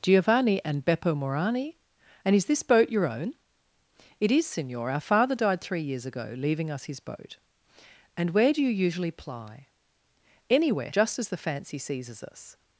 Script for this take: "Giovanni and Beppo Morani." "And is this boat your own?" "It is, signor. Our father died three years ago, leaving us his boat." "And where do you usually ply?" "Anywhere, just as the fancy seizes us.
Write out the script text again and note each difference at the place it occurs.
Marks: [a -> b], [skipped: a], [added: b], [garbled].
"Giovanni and Beppo Morani." "And is this boat your own?" "It is, signor. Our father died three years ago, leaving us his boat." "And where do you usually ply?" "Anywhere, just as the fancy seizes us.